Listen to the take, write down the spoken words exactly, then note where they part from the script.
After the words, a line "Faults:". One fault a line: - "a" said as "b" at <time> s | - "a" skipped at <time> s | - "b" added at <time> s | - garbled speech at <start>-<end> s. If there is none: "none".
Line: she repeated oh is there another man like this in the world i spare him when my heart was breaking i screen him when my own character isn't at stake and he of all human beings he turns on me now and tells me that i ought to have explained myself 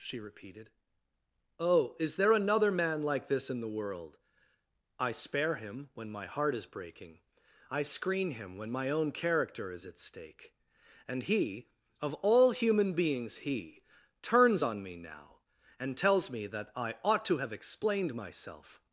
she repeated oh is there another man like this in the world i spare him when my heart is breaking i screen him when my own character is at stake and he of all human beings he turns on me now and tells me that i ought to have explained myself
Faults:
- "was" said as "is" at 6.5 s
- "isn't" said as "is" at 9.7 s